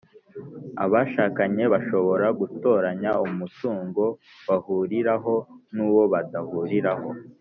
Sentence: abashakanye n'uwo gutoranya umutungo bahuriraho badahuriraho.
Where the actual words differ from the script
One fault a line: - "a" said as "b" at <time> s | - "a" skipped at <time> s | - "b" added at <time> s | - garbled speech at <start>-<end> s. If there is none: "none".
- "n'uwo" said as "bashobora" at 1.7 s
- "n'uwo" added at 5.7 s